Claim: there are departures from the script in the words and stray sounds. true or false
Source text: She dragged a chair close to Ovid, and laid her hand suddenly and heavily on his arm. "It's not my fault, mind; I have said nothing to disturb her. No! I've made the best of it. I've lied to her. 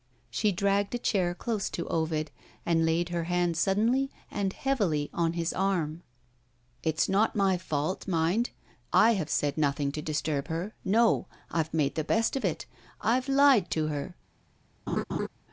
true